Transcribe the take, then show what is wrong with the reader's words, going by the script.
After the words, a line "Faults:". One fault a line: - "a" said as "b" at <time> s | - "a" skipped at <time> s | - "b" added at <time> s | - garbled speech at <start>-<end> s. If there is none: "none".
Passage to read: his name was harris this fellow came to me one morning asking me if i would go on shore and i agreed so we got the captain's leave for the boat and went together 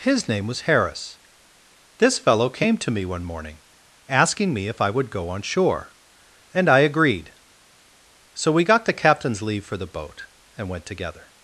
his name was harris this fellow came to me one morning asking me if i would go on shore and i agreed so we got the captain's leave for the boat and went together
Faults:
none